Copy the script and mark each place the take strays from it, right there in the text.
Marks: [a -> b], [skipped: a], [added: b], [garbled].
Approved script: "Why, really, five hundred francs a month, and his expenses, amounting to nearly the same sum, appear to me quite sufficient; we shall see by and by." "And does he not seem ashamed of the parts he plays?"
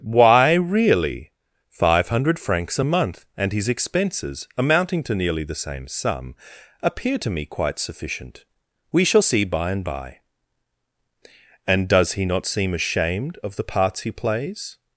"Why, really, five hundred francs a month, and his expenses, amounting to nearly the same sum, appear to me quite sufficient; we shall see by and by." "And does he not seem ashamed of the parts he plays?"